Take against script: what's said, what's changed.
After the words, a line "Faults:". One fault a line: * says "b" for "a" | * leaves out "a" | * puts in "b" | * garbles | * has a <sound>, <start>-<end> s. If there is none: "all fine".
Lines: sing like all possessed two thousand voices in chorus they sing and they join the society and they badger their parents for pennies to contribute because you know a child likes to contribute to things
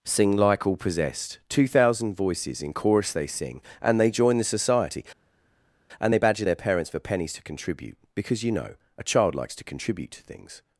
sing like all possessed two thousand voices in chorus they sing and they join the society and they badger their parents for pennies to contribute because you know a child likes to contribute to things
Faults:
all fine